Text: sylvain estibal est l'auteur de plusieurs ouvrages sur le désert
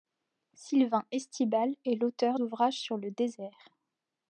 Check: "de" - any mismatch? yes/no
yes